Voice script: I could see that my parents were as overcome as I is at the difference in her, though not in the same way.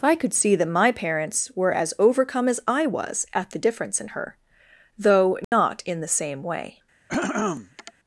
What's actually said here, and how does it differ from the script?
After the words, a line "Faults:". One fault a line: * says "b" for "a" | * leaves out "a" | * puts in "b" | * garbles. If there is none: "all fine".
I could see that my parents were as overcome as I was at the difference in her, though not in the same way.
Faults:
* says "was" for "is"